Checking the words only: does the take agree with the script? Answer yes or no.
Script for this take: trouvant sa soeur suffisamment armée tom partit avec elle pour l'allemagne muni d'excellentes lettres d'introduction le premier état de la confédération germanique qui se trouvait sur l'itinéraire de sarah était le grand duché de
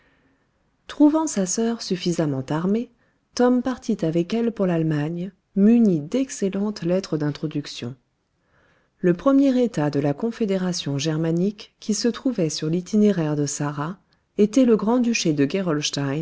yes